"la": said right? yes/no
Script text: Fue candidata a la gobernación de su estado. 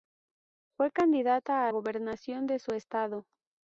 no